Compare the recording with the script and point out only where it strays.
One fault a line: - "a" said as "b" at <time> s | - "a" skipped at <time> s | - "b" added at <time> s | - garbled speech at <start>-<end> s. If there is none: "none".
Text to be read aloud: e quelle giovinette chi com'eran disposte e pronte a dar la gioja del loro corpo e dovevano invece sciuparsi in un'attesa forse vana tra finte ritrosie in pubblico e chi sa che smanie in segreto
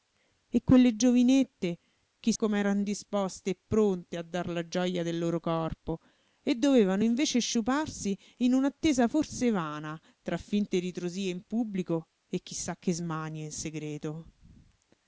none